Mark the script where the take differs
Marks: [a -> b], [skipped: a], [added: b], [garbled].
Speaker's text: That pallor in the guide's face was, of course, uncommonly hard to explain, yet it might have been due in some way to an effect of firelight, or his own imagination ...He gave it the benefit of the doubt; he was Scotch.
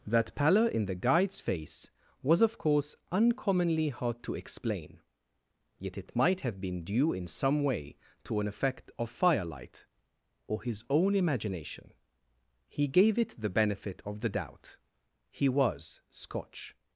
That pallor in the guide's face was, of course, uncommonly hard to explain, yet it might have been due in some way to an effect of firelight, or his own imagination ...He gave it the benefit of the doubt; he was Scotch.